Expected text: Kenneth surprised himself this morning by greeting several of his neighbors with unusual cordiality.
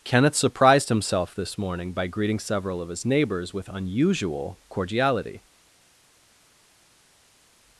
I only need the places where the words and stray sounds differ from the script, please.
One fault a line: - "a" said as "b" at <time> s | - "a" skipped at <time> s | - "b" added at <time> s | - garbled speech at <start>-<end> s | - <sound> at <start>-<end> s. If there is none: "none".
none